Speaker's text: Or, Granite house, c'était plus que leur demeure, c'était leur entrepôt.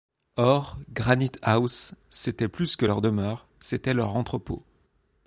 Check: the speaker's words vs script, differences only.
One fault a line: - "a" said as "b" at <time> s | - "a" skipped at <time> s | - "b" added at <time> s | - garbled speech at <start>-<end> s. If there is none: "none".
none